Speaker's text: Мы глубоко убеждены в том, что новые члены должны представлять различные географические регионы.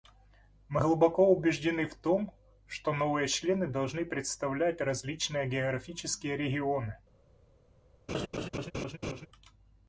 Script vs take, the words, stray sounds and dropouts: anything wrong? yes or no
yes